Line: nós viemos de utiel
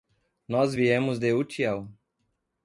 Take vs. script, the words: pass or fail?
pass